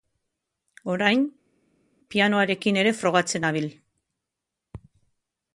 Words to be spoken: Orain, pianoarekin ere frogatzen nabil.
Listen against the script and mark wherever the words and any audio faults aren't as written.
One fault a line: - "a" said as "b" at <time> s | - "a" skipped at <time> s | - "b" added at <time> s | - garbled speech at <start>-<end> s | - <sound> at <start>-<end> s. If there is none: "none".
none